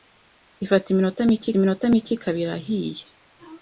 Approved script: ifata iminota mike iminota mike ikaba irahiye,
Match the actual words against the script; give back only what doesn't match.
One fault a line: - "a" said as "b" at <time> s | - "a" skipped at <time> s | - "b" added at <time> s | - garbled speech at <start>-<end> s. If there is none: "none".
none